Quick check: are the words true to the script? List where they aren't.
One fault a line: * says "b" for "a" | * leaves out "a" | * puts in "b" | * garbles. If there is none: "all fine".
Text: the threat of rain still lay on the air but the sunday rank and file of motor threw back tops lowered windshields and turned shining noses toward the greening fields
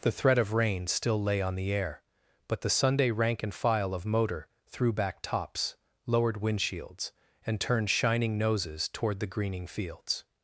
all fine